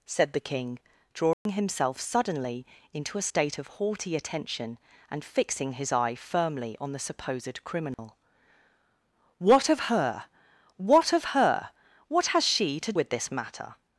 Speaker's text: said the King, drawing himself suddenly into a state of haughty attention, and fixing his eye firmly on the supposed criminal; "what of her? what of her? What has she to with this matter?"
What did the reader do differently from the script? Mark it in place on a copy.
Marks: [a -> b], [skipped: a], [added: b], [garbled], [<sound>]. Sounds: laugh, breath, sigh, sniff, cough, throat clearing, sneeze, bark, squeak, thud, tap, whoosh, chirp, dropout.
said the King, drawing [dropout] himself suddenly into a state of haughty attention, and fixing his eye firmly on the supposed criminal; [dropout] "what of her? what of her? What has she to with this matter?"